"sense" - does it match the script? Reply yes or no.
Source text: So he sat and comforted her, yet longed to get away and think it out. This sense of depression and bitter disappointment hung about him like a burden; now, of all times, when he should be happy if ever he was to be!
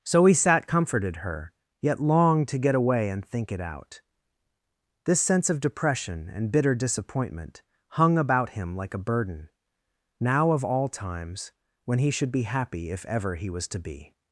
yes